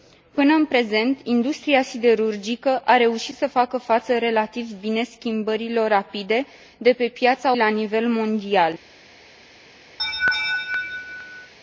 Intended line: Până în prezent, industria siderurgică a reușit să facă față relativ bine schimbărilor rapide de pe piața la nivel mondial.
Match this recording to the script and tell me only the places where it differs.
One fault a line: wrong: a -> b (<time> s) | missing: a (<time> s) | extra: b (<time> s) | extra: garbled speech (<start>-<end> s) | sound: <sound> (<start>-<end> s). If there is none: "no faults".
sound: laugh (10.0-11.5 s)